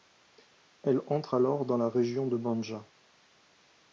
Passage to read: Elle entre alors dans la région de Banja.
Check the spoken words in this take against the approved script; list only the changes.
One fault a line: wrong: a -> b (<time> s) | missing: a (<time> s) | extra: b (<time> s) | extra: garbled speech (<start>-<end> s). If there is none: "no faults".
no faults